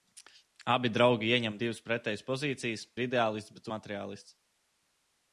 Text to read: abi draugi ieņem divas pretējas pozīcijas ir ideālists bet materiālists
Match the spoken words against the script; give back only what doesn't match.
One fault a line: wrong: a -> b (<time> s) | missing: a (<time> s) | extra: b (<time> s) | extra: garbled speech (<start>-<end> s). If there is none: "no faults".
no faults